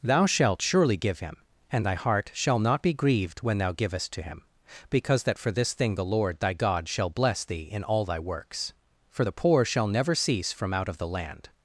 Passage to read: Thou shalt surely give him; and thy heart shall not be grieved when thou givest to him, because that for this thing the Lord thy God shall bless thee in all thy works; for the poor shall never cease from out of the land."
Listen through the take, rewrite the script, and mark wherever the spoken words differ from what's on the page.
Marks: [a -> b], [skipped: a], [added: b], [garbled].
Thou shalt surely give him; and thy heart shall not be grieved when thou givest to him, because that for this thing the Lord thy God shall bless thee in all thy works; for the poor shall never cease from out of the land."